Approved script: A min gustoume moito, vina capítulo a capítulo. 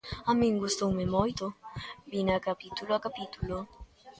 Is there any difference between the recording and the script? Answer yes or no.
no